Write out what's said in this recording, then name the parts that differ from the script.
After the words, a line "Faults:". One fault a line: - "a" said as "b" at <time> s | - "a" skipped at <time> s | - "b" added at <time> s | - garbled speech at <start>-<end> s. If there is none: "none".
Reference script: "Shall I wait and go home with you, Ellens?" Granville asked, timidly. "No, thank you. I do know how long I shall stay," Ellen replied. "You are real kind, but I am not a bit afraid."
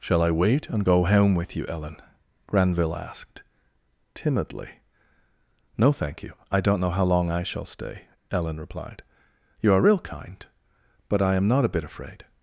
"Shall I wait and go home with you, Ellen?" Granville asked, timidly. "No, thank you. I don't know how long I shall stay," Ellen replied. "You are real kind, but I am not a bit afraid."
Faults:
- "Ellens" said as "Ellen" at 1.7 s
- "do" said as "don't" at 6.6 s